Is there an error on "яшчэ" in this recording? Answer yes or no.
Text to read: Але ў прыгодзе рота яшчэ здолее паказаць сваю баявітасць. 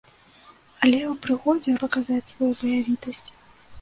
yes